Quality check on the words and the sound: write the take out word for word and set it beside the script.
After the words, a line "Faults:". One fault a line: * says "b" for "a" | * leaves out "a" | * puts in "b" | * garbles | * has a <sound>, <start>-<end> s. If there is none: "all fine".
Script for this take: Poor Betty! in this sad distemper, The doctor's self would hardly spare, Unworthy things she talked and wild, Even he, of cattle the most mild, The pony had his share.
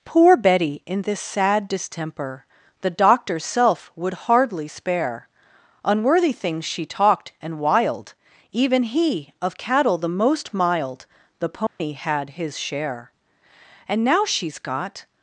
Poor Betty! in this sad distemper, The doctor's self would hardly spare, Unworthy things she talked and wild, Even he, of cattle the most mild, The pony had his share. And now she's got
Faults:
* has a dropout, 11.7-11.8 s
* puts in "And now she's got"